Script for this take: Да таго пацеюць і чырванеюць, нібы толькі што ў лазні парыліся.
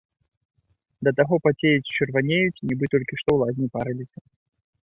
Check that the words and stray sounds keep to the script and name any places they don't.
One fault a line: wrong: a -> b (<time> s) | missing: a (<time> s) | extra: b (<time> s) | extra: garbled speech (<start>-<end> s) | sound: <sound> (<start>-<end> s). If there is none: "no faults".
no faults